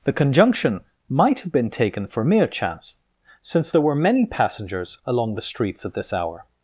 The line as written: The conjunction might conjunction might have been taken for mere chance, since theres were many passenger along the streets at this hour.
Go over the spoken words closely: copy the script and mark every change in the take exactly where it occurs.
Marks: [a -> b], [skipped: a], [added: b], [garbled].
The conjunction might [skipped: conjunction might] have been taken for mere chance, since [theres -> there] were many [passenger -> passengers] along the streets at this hour.